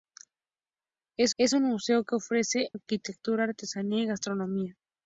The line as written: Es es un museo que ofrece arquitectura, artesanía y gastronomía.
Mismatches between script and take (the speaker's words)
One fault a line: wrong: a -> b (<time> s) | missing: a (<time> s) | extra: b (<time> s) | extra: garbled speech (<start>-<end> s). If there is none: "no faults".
no faults